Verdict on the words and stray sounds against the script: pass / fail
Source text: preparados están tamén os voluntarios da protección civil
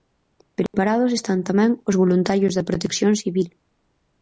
fail